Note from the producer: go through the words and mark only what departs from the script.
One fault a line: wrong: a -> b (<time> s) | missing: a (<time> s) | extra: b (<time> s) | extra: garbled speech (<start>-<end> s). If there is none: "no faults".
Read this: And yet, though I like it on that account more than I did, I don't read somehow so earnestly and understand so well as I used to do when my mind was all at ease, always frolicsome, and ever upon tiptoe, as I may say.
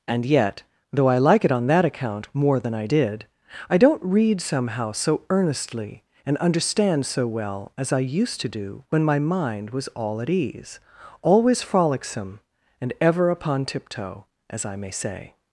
no faults